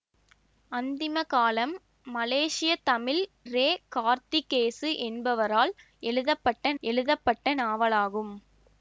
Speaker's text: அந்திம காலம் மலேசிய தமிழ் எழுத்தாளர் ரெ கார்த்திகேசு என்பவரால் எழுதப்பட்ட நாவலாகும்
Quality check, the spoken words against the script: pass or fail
fail